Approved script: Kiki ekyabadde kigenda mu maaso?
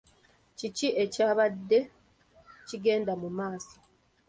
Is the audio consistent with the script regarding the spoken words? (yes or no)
yes